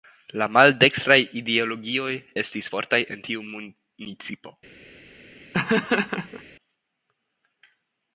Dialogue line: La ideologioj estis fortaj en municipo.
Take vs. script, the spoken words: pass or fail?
fail